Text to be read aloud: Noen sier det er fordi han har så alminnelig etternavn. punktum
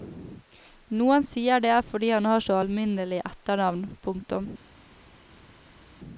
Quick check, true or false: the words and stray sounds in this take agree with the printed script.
true